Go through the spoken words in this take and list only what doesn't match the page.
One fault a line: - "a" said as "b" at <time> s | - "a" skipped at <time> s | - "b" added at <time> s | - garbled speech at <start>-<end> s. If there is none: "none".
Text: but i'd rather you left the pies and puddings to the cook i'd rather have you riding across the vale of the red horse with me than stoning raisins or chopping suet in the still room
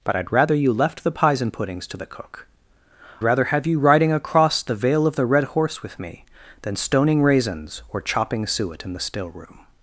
- "i'd" skipped at 2.5 s